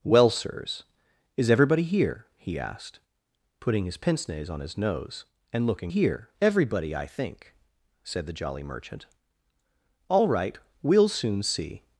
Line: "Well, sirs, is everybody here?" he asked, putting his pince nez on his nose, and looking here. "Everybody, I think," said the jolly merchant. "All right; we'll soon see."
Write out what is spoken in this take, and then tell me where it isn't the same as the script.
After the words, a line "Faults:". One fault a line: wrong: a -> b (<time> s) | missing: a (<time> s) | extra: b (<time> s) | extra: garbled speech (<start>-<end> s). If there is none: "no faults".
"Well, sirs, is everybody here?" he asked, putting his pince nez on his nose, and looking here. "Everybody, I think," said the jolly merchant. "All right; we'll soon see."
Faults:
no faults